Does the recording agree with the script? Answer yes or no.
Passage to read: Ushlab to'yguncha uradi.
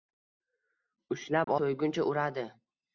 yes